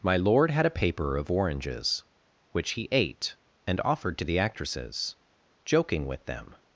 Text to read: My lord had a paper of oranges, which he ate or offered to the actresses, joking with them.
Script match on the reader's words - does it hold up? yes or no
no